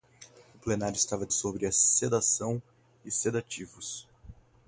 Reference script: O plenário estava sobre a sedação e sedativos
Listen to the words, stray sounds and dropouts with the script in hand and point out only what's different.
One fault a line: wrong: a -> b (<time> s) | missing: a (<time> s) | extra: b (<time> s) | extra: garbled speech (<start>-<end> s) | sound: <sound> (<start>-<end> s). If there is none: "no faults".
no faults